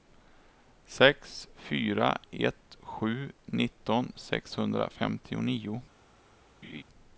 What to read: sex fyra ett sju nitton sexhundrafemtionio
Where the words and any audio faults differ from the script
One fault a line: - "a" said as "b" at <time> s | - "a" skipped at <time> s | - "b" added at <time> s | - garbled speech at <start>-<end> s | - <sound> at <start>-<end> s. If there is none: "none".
- laugh at 6.6-6.8 s